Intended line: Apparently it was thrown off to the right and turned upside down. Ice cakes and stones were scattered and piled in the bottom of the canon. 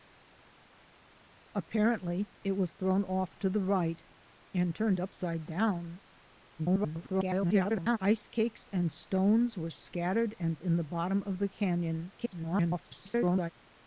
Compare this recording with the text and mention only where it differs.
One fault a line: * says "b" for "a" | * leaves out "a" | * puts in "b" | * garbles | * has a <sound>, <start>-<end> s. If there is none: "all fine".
* garbles
* leaves out "piled"
* garbles